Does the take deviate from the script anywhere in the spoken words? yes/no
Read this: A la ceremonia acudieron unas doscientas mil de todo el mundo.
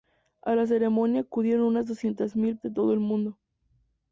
no